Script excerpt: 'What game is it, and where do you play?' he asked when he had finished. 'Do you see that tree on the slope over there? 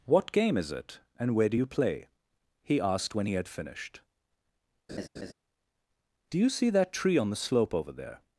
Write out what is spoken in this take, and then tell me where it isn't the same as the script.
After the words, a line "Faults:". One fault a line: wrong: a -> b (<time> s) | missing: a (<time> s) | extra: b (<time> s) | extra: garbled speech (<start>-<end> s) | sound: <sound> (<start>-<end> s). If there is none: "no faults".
'What game is it, and where do you play?' he asked when he had finished. 'Do you see that tree on the slope over there?
Faults:
sound: laugh (4.9-5.3 s)